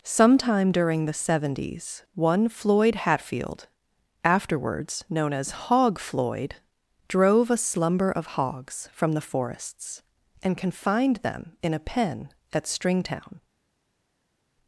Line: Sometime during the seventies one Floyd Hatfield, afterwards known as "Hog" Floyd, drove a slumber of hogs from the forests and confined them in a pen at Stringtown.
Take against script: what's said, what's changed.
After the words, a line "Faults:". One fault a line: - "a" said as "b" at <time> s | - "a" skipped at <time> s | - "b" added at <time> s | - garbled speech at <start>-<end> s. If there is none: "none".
Sometime during the seventies one Floyd Hatfield, afterwards known as "Hog" Floyd, drove a slumber of hogs from the forests and confined them in a pen at Stringtown.
Faults:
none